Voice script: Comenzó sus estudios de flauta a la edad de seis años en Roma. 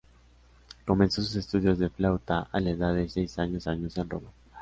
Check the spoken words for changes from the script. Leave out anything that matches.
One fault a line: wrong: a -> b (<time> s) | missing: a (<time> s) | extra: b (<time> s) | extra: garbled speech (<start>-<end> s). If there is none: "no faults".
extra: años (3.7 s)